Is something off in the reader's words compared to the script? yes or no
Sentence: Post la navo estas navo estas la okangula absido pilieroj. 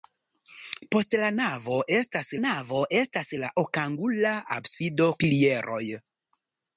no